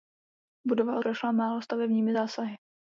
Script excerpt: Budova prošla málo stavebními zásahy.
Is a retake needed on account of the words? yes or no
no